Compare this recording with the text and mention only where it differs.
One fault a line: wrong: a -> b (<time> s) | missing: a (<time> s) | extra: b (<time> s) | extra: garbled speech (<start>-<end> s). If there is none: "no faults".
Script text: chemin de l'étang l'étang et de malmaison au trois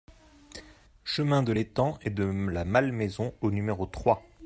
missing: l'étang (2.0 s)
extra: la (2.2 s)
extra: numéro (3.5 s)